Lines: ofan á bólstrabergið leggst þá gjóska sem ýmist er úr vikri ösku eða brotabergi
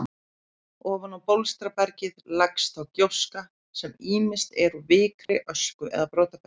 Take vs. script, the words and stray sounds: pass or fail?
fail